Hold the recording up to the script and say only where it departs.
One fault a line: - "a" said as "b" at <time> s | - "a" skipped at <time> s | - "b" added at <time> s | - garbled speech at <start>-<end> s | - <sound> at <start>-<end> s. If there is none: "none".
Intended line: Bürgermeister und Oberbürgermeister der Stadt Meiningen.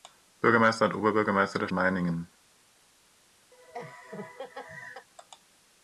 - "Stadt" skipped at 1.7 s
- laugh at 3.5-5.1 s